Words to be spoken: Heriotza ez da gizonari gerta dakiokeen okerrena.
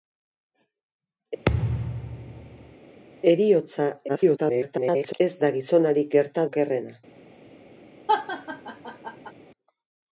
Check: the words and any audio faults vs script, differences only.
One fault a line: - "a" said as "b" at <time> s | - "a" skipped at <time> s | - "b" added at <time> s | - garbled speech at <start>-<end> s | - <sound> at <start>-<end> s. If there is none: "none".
- thud at 1.5-2.8 s
- garbled speech at 4.1-5.2 s
- "dakiokeen" skipped at 6.5 s
- laugh at 8.1-9.3 s